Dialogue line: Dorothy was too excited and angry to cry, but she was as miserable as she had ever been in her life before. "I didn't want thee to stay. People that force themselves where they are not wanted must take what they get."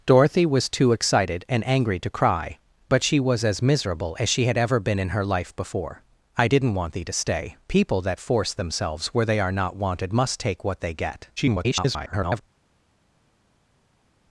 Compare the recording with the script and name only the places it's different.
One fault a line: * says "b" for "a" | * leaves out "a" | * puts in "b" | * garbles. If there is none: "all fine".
* garbles